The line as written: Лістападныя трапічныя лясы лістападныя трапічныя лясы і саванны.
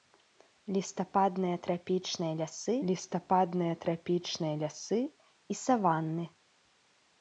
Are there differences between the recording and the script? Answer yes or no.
no